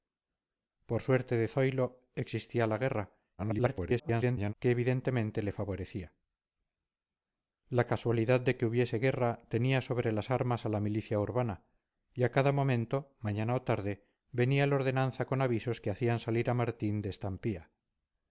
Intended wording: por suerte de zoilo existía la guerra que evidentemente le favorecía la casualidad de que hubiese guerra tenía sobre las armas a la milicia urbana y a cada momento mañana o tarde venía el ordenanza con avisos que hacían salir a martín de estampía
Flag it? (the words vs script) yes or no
yes